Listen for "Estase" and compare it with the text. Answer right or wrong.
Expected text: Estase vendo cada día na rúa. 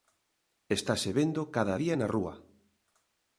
right